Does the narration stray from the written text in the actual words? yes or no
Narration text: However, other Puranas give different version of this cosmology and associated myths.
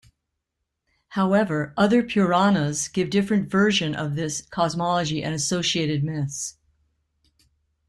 no